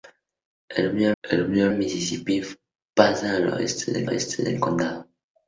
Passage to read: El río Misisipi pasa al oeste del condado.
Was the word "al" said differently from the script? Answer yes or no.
no